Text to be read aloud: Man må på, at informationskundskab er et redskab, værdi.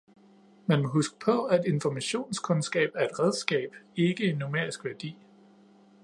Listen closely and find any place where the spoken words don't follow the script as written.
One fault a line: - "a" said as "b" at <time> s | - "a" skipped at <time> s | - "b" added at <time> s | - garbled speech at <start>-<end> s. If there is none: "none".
- "huske" added at 0.9 s
- "ikke en numerisk" added at 4.0 s